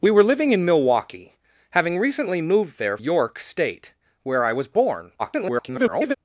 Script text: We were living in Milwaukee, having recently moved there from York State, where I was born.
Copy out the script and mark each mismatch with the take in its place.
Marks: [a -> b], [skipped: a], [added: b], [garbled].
We were living in Milwaukee, having recently moved there [skipped: from] York State, where I was born. [garbled]